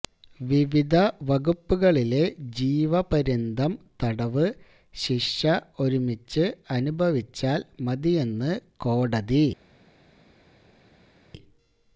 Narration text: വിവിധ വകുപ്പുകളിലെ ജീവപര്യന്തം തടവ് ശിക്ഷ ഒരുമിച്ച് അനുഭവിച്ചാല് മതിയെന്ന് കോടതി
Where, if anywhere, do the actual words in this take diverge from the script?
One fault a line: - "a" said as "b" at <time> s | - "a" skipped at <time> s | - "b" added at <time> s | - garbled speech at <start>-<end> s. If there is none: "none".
none